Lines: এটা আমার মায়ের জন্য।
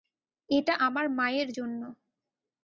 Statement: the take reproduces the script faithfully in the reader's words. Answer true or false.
true